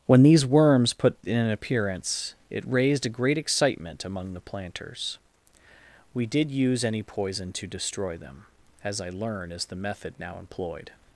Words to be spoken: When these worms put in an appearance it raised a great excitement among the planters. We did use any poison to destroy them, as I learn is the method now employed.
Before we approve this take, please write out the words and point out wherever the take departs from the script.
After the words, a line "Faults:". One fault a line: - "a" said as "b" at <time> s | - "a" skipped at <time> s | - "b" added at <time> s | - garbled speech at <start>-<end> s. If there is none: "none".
When these worms put in an appearance it raised a great excitement among the planters. We did use any poison to destroy them, as I learn is the method now employed.
Faults:
none